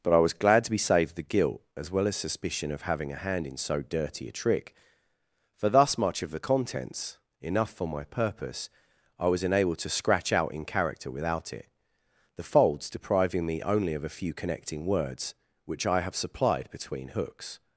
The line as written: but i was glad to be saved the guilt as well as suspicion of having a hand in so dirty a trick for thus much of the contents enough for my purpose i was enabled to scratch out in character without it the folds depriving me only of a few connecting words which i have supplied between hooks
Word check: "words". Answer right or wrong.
right